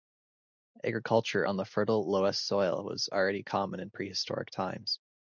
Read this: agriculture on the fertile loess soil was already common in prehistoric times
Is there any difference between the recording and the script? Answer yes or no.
no